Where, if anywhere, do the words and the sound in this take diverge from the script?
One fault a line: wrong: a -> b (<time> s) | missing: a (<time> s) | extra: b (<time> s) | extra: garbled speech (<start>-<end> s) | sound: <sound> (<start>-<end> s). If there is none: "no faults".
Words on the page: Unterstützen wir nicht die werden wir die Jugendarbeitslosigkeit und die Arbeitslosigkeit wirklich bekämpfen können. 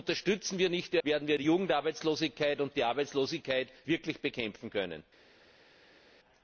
no faults